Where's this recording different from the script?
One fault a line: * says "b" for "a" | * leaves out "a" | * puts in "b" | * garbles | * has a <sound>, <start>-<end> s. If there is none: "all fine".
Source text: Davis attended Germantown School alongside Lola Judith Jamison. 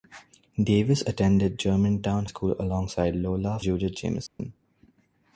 * has a dropout, 4.3-4.4 s